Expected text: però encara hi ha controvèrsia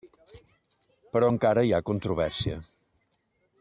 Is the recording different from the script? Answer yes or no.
no